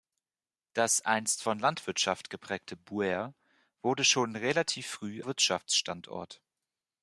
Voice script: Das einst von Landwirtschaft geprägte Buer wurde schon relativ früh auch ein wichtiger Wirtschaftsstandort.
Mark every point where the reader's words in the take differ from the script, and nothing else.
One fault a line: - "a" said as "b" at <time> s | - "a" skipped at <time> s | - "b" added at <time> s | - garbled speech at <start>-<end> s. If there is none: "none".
- "auch ein wichtiger" skipped at 5.2 s